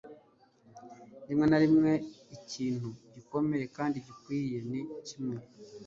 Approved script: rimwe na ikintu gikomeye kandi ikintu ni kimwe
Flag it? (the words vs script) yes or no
yes